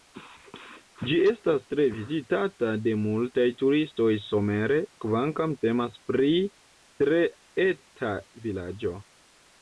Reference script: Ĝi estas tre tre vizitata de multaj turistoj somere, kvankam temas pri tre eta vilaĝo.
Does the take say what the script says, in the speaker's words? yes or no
no